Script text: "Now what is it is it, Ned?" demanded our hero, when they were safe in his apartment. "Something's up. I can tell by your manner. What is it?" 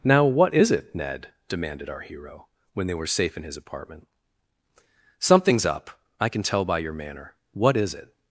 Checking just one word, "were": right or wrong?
right